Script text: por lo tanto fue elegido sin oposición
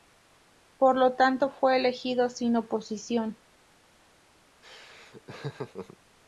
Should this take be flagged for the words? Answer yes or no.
no